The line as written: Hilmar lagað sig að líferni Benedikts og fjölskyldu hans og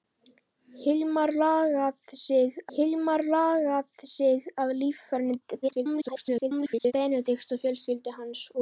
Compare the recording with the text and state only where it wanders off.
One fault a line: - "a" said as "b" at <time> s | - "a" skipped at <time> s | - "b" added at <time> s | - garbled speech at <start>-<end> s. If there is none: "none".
- "hilmar lagað sig" added at 2.8 s
- garbled speech at 5.6-6.9 s